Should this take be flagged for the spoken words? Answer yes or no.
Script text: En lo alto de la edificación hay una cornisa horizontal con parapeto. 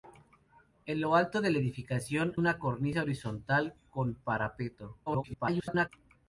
yes